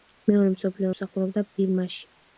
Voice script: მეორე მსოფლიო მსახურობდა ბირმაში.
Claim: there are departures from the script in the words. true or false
false